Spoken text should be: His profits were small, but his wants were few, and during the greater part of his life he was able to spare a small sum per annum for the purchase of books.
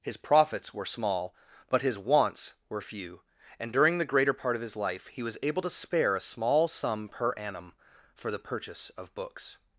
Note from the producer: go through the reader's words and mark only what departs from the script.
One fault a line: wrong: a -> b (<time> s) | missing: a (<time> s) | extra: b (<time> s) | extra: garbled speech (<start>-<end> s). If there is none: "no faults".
no faults